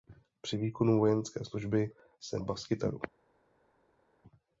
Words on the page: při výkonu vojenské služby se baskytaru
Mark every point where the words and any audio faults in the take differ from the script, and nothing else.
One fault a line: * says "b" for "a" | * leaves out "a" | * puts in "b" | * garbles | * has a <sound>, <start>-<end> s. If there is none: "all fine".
all fine